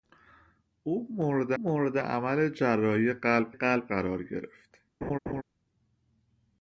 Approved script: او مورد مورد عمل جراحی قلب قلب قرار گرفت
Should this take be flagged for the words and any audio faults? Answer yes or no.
yes